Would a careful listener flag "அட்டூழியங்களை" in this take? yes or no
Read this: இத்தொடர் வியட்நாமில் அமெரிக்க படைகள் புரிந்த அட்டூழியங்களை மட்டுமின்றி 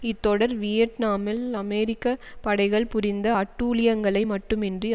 no